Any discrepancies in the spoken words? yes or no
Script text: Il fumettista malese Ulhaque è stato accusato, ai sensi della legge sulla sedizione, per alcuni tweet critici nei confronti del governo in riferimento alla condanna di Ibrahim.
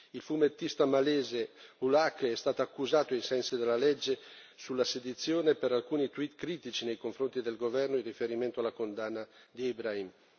no